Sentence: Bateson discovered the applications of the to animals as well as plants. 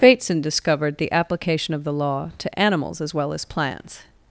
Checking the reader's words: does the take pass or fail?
fail